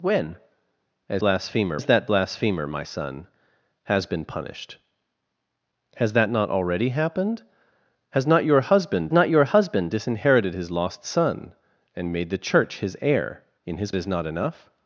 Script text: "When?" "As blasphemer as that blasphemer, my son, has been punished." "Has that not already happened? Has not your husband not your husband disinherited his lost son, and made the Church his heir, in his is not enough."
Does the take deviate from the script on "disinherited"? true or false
false